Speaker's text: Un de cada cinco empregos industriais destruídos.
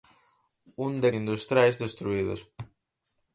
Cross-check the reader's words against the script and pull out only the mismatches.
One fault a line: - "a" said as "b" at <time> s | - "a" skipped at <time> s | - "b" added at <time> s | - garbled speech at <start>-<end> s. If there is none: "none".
- "cada cinco empregos" skipped at 1.1 s